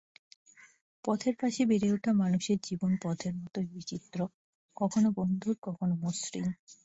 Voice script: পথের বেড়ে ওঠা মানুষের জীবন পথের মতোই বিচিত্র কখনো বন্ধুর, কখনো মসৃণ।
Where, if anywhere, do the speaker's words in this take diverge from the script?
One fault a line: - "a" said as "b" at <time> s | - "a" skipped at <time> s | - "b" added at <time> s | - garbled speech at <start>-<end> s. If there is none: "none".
- "পাশে" added at 1.4 s